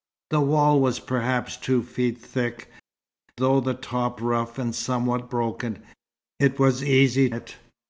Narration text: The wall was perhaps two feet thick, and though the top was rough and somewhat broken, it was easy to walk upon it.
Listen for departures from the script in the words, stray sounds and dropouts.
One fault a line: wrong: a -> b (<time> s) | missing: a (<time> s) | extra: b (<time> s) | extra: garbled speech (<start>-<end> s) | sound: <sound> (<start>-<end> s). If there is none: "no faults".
missing: and (2.7 s)
missing: was (4.2 s)
missing: to walk upon (7.3 s)